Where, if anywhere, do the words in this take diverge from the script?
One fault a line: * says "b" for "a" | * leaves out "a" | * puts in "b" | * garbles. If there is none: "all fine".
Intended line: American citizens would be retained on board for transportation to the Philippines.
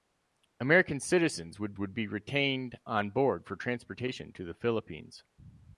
* puts in "would"